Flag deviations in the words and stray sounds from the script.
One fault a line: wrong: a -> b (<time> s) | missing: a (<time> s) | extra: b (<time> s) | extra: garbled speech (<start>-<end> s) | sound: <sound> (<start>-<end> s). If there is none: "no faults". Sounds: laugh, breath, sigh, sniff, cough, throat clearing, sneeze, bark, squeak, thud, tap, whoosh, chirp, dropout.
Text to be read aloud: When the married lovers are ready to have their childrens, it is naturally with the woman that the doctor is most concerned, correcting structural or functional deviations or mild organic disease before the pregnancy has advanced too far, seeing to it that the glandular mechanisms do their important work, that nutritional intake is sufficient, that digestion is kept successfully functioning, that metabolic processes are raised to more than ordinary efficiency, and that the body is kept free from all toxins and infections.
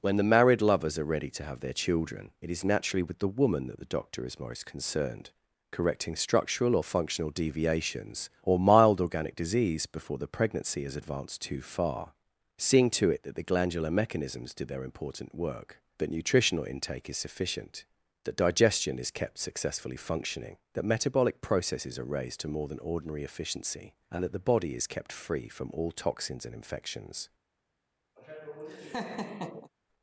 wrong: childrens -> children (1.8 s)
sound: laugh (28.2-29.7 s)